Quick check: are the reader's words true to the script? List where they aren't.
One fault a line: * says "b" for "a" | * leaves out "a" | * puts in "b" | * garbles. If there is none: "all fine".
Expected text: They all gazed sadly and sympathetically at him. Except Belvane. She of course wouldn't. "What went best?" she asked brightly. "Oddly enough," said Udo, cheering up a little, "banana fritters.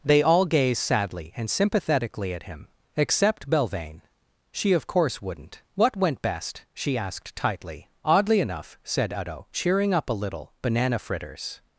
* says "tightly" for "brightly"